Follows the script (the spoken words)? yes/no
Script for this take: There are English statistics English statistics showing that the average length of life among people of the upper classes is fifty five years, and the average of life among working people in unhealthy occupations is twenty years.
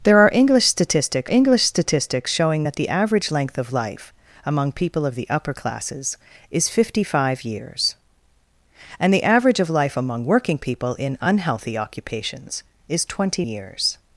yes